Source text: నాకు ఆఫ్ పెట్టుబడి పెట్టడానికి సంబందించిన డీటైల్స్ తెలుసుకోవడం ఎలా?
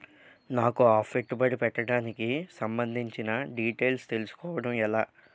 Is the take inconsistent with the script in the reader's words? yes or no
no